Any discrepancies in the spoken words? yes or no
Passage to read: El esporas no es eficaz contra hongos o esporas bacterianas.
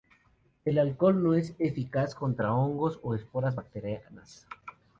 yes